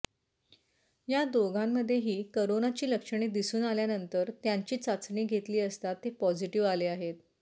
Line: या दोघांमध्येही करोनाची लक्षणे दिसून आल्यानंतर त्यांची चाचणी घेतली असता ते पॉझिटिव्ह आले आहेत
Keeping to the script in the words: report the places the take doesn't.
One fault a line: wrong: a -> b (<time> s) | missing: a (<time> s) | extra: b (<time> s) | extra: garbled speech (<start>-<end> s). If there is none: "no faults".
no faults